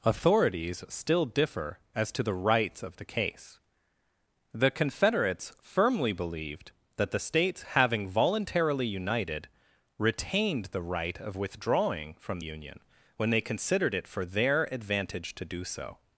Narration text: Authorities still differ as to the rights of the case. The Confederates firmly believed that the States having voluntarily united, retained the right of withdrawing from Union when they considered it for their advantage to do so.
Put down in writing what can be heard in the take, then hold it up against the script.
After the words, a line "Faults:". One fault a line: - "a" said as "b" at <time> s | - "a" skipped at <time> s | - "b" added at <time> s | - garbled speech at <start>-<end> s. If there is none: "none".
Authorities still differ as to the rights of the case. The Confederates firmly believed that the States having voluntarily united, retained the right of withdrawing from Union when they considered it for their advantage to do so.
Faults:
none